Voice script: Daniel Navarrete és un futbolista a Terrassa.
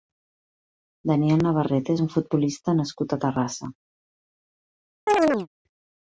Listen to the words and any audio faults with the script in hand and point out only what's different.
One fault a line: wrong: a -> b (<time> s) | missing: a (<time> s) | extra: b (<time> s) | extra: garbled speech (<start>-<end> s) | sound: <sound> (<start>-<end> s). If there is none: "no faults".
extra: nascut (2.8 s)
sound: chirp (5.1-5.5 s)